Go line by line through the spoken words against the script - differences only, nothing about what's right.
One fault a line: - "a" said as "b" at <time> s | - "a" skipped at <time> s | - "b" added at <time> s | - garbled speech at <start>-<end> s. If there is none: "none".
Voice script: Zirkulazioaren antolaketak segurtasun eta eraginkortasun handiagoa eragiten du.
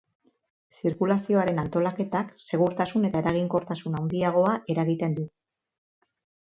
none